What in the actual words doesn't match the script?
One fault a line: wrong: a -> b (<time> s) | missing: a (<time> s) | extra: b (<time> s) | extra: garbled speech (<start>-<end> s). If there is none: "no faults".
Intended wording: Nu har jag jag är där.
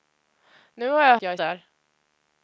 no faults